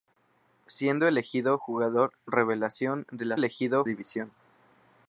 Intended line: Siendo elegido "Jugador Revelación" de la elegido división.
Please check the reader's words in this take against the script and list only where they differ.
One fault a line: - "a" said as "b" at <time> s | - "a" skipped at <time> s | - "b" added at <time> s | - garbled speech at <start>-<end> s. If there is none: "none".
none